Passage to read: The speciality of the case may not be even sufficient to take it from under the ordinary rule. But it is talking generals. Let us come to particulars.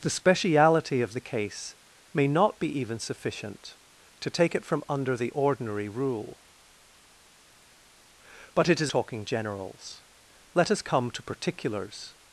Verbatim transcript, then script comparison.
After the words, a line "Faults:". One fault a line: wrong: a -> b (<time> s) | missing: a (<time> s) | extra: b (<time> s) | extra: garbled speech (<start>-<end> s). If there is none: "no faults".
The speciality of the case may not be even sufficient to take it from under the ordinary rule. But it is talking generals. Let us come to particulars.
Faults:
no faults